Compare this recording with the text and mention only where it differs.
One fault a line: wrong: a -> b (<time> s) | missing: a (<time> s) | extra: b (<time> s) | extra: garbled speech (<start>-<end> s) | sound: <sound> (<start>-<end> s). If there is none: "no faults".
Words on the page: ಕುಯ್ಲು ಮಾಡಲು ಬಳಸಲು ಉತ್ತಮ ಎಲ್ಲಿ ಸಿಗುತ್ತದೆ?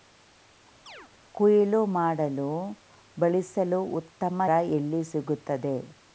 sound: chirp (0.9-1.1 s)